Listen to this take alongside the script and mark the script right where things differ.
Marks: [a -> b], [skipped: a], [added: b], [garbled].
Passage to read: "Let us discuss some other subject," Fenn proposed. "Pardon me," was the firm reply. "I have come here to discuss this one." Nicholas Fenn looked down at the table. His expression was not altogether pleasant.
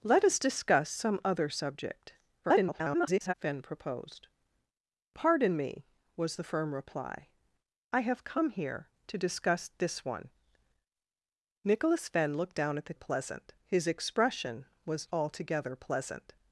"Let us discuss some other subject," [garbled] Fenn proposed. "Pardon me," was the firm reply. "I have come here to discuss this one." Nicholas Fenn looked down at the [table. -> pleasant] His expression was [skipped: not] altogether pleasant.